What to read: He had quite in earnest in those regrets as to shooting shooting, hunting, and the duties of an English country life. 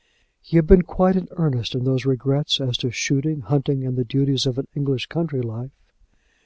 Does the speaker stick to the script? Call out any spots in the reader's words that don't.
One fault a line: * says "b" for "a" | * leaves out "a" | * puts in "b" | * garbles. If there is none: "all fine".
* puts in "been"
* leaves out "shooting"